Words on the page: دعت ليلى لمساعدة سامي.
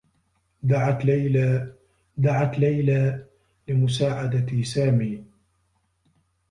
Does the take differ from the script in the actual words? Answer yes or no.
yes